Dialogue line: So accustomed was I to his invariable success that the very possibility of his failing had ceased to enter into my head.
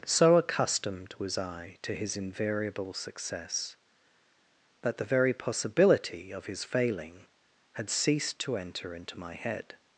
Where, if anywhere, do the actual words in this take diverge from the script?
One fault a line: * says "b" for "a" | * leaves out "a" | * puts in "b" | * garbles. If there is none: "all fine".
all fine